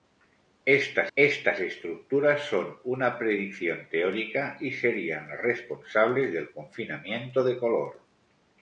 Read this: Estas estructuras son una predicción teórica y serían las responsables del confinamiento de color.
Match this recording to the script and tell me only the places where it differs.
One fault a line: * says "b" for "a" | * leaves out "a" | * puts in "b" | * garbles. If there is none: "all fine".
* puts in "estas"